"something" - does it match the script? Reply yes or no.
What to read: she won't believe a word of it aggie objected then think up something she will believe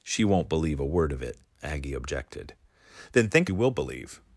no